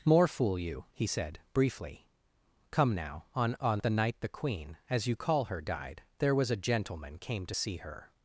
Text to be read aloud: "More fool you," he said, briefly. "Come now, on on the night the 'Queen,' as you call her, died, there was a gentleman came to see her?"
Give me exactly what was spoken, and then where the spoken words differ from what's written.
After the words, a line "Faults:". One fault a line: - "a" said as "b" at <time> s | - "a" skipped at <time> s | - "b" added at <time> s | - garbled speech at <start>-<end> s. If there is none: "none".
"More fool you," he said, briefly. "Come now, on on the night the 'Queen,' as you call her, died, there was a gentleman came to see her?"
Faults:
none